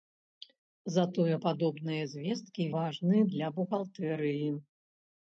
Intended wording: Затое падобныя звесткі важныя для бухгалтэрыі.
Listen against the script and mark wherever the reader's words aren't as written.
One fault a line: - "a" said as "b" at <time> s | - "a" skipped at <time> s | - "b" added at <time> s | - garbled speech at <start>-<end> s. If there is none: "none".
none